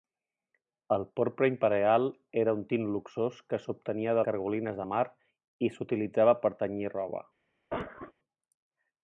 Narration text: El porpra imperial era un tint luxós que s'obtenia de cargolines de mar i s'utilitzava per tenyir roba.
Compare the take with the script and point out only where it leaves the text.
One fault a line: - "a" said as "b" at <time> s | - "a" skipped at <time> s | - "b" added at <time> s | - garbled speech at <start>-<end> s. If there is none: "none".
none